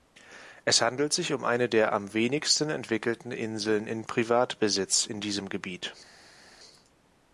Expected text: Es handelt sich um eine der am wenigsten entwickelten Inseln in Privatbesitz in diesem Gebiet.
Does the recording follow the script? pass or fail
pass